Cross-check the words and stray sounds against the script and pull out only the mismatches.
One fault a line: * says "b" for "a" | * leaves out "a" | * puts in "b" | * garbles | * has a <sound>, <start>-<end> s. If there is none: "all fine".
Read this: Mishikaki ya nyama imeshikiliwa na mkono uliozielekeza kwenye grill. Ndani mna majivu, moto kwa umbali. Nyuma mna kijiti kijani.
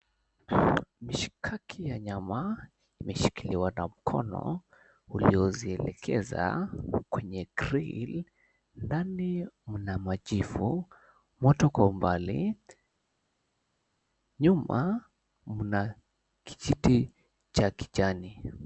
* puts in "cha"